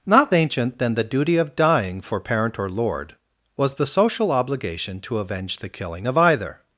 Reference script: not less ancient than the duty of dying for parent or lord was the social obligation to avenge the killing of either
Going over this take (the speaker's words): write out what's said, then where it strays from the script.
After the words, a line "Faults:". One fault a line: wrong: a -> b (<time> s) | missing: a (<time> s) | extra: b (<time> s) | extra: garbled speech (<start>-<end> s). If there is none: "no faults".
not ancient than the duty of dying for parent or lord was the social obligation to avenge the killing of either
Faults:
missing: less (0.3 s)